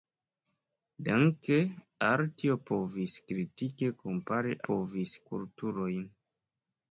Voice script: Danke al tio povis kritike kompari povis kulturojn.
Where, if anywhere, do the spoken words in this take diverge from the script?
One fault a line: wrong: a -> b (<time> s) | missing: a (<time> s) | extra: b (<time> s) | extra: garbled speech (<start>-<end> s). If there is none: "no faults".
no faults